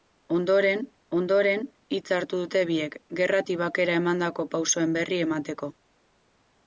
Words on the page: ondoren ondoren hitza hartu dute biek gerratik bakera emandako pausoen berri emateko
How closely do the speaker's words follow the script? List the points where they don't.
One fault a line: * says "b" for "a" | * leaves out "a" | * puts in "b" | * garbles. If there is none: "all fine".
all fine